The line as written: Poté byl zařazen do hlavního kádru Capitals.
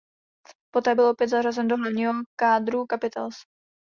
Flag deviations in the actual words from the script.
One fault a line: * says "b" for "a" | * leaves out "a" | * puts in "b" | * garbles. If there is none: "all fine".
* puts in "opět"